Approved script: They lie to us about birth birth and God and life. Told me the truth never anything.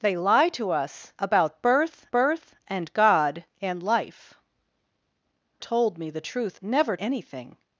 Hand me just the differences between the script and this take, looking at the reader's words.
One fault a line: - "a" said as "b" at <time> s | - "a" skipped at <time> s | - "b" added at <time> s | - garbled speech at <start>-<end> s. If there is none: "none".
none